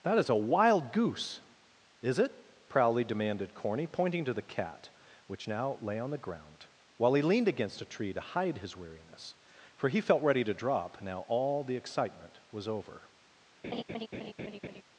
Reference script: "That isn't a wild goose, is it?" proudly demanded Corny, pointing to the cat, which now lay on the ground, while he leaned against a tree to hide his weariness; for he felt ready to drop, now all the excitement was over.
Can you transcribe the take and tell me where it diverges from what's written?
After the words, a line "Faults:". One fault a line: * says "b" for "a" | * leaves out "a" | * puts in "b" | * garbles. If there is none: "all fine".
"That is a wild goose, is it?" proudly demanded Corny, pointing to the cat, which now lay on the ground, while he leaned against a tree to hide his weariness; for he felt ready to drop, now all the excitement was over.
Faults:
* says "is" for "isn't"